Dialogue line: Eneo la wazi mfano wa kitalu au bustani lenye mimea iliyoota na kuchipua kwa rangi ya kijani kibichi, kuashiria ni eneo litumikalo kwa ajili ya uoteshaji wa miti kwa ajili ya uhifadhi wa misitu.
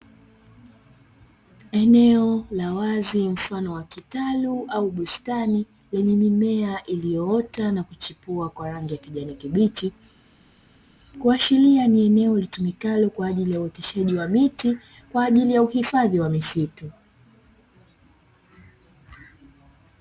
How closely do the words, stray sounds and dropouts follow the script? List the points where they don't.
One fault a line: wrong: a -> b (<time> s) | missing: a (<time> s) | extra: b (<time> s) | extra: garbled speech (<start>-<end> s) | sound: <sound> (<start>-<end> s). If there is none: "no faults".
no faults